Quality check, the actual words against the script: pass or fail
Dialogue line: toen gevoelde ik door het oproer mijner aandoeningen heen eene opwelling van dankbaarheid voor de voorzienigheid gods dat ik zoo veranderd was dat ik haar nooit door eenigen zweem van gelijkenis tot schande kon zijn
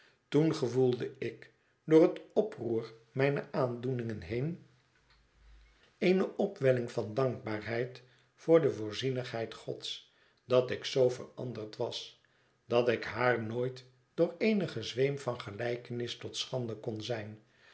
pass